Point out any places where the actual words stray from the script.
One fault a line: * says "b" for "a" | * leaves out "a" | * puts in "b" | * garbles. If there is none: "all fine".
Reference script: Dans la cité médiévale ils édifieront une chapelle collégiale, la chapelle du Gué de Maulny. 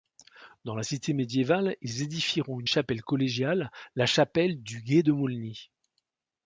all fine